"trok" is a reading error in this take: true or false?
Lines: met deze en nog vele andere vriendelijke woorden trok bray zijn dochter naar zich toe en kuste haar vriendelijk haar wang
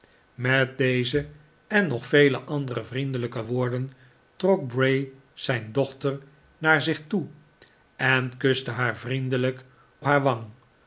false